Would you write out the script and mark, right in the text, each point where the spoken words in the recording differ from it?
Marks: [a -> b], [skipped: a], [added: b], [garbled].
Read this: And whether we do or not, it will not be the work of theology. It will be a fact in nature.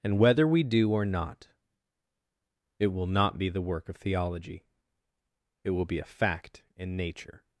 And whether we do or not, it will not be the work of theology. It will be a fact in nature.